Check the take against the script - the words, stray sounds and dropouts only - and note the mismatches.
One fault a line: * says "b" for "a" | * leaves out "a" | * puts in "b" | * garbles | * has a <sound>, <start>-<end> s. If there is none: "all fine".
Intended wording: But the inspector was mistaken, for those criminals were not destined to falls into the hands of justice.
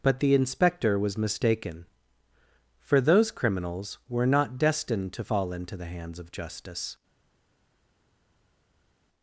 * says "fall" for "falls"